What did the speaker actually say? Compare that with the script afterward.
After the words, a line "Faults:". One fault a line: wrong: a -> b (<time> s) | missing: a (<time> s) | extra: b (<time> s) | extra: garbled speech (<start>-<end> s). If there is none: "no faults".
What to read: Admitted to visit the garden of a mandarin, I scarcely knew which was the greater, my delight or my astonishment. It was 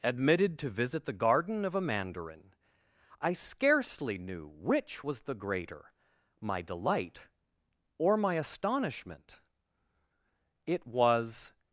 Admitted to visit the garden of a mandarin, I scarcely knew which was the greater, my delight or my astonishment. It was
Faults:
no faults